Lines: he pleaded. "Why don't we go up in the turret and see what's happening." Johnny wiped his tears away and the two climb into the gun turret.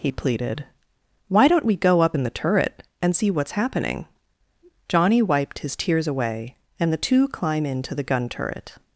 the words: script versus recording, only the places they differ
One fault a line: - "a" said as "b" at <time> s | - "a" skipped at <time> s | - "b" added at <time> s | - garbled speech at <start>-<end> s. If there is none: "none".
none